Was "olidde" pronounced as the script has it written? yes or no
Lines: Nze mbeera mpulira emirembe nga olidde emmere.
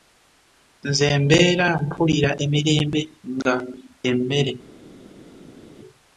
no